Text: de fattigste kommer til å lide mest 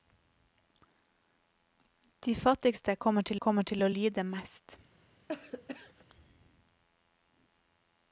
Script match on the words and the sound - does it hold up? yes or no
no